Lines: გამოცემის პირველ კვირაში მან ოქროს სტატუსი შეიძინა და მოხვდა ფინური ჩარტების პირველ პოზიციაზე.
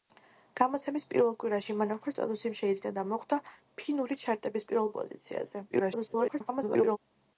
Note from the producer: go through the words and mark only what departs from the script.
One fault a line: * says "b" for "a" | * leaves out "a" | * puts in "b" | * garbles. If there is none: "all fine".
* garbles